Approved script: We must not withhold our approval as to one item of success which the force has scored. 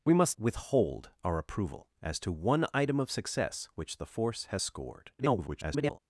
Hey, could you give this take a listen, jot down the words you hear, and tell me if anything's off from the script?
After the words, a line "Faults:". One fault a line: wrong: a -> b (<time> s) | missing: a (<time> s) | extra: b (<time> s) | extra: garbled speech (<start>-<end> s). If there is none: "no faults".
We must withhold our approval as to one item of success which the force has scored. [garbled]
Faults:
missing: not (0.3 s)
extra: garbled speech (5.2-6.0 s)